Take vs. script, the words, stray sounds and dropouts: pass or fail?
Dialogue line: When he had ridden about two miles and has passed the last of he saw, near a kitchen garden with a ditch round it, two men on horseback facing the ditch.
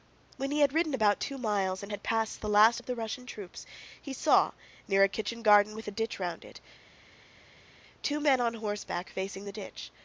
fail